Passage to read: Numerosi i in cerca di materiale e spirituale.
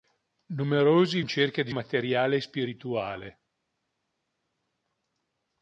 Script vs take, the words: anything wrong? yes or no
no